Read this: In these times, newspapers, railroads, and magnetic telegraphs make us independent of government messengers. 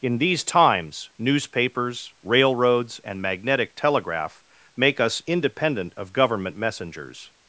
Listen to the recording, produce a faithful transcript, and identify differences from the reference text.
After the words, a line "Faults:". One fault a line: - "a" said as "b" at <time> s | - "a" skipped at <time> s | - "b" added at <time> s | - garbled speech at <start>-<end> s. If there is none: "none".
In these times, newspapers, railroads, and magnetic telegraph make us independent of government messengers.
Faults:
- "telegraphs" said as "telegraph" at 3.8 s